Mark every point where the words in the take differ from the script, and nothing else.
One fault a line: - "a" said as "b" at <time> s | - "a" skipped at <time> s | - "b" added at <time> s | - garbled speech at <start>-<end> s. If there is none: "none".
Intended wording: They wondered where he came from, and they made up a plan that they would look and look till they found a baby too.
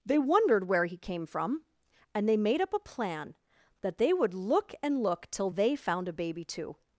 none